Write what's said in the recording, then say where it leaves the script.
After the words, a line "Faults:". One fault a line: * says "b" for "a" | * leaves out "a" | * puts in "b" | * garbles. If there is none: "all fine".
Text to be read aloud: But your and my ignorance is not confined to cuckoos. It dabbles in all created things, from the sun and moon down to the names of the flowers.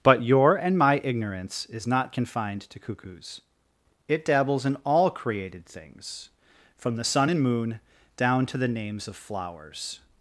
But your and my ignorance is not confined to cuckoos. It dabbles in all created things, from the sun and moon down to the names of flowers.
Faults:
* leaves out "the"